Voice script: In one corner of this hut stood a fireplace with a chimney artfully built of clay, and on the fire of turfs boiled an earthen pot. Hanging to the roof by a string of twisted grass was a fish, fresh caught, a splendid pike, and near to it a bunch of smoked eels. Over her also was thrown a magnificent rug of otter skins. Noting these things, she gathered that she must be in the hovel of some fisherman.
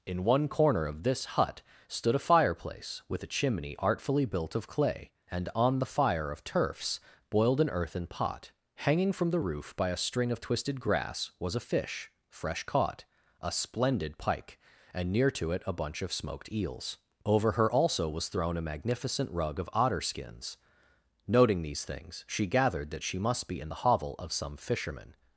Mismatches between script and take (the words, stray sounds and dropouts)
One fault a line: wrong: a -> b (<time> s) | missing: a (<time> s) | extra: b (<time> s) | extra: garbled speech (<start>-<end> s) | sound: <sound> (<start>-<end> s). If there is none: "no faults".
wrong: to -> from (9.1 s)